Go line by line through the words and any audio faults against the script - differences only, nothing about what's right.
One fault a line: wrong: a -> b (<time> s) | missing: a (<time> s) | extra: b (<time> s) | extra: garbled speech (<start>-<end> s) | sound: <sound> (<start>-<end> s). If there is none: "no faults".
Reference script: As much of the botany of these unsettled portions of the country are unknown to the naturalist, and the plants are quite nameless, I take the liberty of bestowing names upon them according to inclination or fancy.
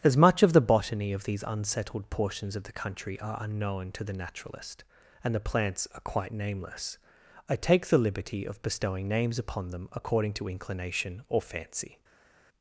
no faults